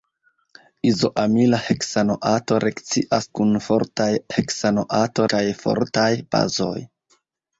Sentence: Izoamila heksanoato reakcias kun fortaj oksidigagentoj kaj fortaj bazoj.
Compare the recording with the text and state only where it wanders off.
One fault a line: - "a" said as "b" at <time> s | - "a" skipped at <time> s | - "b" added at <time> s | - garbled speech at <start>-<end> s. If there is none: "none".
- "oksidigagentoj" said as "heksanoato" at 4.3 s